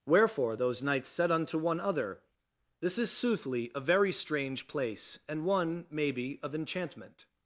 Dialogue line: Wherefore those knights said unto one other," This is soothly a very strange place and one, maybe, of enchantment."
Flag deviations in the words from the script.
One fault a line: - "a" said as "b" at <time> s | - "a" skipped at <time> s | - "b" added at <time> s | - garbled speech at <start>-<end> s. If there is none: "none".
none